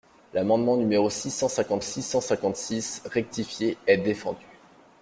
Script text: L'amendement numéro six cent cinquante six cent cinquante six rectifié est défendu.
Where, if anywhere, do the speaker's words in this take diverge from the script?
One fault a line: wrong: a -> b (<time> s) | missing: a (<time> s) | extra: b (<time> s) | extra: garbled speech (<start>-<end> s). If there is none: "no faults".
no faults